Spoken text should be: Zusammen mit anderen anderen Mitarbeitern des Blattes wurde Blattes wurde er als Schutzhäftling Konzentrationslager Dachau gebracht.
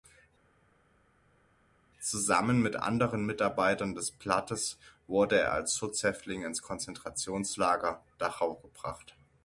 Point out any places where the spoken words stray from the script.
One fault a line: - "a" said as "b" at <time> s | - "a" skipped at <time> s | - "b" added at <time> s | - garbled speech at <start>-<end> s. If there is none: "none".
- "anderen" skipped at 3.2 s
- "Blattes wurde" skipped at 5.4 s
- "ins" added at 6.4 s